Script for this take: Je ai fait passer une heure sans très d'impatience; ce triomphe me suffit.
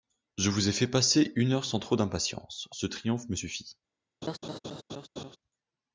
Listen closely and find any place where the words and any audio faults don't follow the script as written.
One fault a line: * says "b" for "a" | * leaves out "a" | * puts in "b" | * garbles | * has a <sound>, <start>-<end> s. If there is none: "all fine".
* puts in "vous"
* says "trop" for "très"
* has a laugh, 4.2-5.4 s